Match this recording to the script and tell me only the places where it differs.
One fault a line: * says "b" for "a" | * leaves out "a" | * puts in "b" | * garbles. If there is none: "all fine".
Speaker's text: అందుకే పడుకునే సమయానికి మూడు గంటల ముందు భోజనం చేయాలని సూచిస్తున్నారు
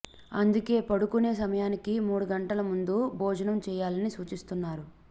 all fine